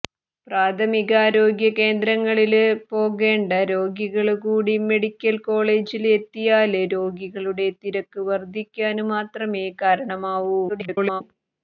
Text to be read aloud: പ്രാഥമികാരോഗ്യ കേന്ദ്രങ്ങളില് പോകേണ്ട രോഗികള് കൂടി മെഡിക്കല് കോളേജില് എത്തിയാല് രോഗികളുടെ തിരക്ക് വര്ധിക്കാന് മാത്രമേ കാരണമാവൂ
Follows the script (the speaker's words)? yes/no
no